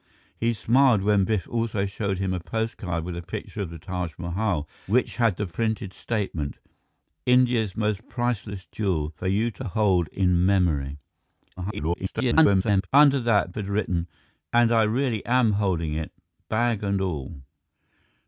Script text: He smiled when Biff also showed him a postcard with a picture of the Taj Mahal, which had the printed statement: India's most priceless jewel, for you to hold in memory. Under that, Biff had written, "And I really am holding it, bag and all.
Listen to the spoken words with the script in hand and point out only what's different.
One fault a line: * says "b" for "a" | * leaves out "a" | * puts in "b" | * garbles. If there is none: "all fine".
* garbles
* leaves out "Biff"